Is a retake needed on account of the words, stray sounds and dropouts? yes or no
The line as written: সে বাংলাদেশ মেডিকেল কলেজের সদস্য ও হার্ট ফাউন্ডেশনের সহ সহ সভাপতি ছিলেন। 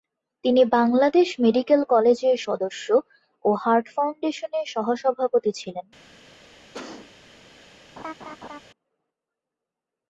yes